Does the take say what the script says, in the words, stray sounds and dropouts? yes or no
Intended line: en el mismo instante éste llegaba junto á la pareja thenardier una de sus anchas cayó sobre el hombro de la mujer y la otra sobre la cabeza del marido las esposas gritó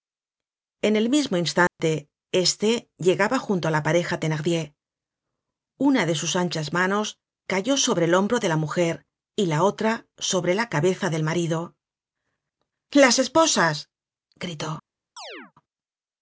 no